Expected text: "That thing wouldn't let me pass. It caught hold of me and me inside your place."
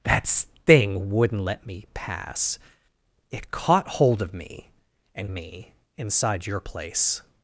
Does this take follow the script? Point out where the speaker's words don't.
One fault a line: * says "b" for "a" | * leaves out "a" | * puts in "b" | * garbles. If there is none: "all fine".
all fine